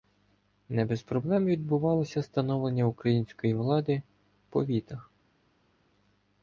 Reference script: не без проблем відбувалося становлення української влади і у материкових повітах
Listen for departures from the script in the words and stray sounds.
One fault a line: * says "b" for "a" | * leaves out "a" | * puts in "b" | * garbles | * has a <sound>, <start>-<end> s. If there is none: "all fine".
* leaves out "і у материкових"